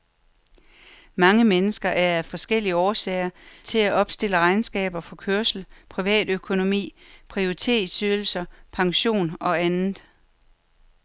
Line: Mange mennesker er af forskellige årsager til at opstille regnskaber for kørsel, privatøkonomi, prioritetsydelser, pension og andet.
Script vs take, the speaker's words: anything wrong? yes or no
no